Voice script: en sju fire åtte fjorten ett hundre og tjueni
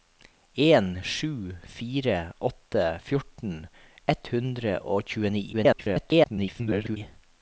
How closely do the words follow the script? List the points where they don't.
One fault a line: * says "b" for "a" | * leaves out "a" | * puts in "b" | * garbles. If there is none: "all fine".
* garbles